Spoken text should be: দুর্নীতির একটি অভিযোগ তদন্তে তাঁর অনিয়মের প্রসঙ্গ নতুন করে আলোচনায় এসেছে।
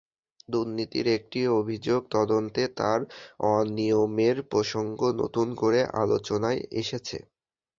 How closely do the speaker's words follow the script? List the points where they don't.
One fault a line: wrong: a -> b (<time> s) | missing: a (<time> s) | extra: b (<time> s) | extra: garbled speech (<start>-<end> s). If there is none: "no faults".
no faults